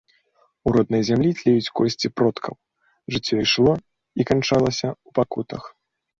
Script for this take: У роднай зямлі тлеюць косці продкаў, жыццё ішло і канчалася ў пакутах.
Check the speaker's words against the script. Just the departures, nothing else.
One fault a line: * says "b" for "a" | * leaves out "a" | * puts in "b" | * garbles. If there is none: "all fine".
all fine